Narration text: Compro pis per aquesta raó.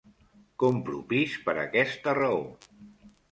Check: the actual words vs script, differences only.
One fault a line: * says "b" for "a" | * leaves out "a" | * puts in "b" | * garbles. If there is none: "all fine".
all fine